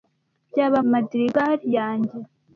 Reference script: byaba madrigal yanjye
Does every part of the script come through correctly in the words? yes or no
yes